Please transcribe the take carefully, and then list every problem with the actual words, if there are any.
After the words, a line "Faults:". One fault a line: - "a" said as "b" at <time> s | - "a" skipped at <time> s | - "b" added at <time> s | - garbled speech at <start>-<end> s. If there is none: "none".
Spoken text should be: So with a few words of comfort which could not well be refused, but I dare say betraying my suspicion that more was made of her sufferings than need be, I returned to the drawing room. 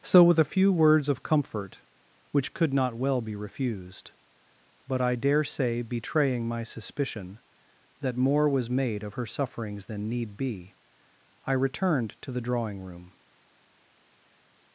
So with a few words of comfort which could not well be refused, but I dare say betraying my suspicion that more was made of her sufferings than need be, I returned to the drawing room.
Faults:
none